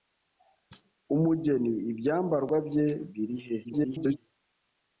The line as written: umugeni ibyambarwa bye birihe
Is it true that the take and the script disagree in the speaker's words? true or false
true